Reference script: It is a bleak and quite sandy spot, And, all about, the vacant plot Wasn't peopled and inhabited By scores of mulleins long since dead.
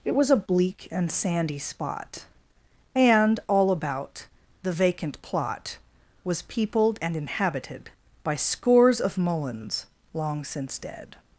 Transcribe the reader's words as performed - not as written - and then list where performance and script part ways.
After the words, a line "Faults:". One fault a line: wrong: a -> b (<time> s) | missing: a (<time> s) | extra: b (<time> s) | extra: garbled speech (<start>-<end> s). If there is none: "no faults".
It was a bleak and sandy spot, And, all about, the vacant plot Was peopled and inhabited By scores of mulleins long since dead.
Faults:
wrong: is -> was (0.1 s)
missing: quite (1.1 s)
wrong: Wasn't -> Was (6.2 s)